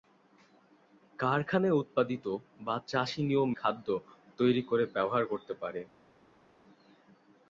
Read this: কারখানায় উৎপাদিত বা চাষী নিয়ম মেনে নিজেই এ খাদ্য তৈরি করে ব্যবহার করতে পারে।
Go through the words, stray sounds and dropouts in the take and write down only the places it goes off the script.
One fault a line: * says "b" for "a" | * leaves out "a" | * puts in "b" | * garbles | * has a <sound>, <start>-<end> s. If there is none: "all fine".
* leaves out "মেনে নিজেই এ"